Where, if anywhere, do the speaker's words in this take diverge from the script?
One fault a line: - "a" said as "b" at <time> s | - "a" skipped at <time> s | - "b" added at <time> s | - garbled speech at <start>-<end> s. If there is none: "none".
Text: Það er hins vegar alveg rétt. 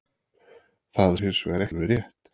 none